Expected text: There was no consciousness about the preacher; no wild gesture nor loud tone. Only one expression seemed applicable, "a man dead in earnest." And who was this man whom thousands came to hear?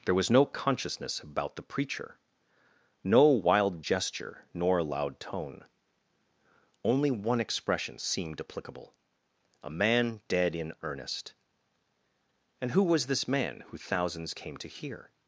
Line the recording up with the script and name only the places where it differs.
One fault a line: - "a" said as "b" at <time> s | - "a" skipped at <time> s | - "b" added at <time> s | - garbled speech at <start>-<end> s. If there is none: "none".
- "whom" said as "who" at 13.7 s